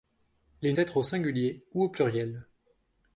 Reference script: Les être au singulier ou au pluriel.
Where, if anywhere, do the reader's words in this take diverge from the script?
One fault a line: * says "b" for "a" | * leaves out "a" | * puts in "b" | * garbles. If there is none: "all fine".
all fine